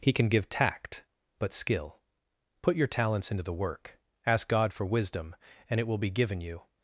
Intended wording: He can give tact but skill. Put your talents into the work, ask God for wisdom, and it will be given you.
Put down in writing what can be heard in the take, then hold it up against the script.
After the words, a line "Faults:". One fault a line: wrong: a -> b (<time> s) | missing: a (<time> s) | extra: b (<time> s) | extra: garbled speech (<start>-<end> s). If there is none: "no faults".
He can give tact but skill. Put your talents into the work, ask God for wisdom, and it will be given you.
Faults:
no faults